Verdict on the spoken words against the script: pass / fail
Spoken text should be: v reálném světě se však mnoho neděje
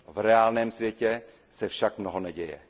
pass